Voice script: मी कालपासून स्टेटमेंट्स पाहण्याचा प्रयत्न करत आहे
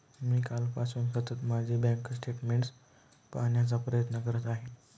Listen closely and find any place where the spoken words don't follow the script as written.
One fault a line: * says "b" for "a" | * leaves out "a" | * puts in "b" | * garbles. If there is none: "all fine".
* puts in "सतत माझे बँक"